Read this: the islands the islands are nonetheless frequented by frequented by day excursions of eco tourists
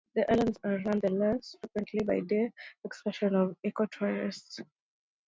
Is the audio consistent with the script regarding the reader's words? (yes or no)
no